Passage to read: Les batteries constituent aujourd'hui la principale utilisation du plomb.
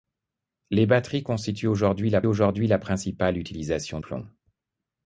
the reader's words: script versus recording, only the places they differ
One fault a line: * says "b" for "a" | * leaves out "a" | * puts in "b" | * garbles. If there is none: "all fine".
* puts in "aujourd'hui la"
* leaves out "du"